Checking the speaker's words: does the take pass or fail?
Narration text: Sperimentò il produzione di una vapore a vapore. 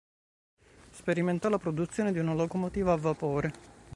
fail